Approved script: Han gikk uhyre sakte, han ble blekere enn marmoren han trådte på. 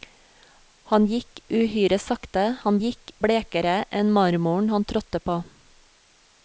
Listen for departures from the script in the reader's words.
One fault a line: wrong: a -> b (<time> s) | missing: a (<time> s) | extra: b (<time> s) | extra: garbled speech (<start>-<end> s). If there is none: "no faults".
wrong: ble -> gikk (2.8 s)